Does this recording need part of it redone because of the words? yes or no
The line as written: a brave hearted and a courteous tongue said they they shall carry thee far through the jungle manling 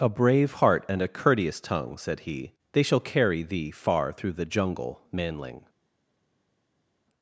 yes